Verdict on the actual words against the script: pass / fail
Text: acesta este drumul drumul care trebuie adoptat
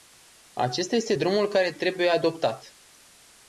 fail